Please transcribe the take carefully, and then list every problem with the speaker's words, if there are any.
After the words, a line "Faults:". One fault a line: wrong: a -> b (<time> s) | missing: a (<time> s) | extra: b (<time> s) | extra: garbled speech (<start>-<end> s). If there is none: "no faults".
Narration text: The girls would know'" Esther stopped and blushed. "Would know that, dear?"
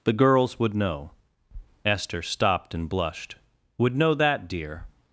The girls would know'" Esther stopped and blushed. "Would know that, dear?"
Faults:
no faults